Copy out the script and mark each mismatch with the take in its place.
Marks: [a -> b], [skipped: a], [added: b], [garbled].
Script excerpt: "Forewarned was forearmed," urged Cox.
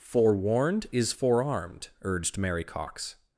"Forewarned [was -> is] forearmed," urged [added: Mary] Cox.